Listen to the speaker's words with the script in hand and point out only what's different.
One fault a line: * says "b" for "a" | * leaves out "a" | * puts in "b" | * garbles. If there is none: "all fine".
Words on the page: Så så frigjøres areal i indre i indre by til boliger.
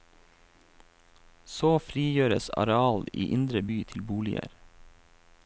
* leaves out "så"
* leaves out "i indre"